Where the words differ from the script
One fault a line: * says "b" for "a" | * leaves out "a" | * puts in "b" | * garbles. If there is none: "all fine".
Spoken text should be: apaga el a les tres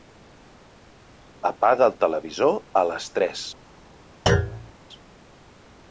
* puts in "televisor"